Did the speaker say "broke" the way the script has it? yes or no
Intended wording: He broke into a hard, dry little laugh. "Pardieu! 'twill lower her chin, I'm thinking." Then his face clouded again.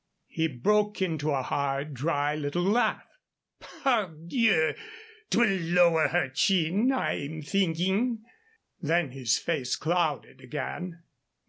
yes